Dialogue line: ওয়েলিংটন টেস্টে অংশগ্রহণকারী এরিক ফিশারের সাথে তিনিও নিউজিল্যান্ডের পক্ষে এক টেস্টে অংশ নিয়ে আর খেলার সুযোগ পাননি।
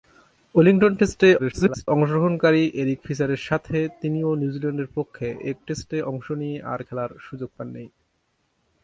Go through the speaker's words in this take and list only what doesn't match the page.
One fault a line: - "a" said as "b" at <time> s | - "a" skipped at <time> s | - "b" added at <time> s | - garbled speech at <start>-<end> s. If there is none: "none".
- garbled speech at 1.4-1.9 s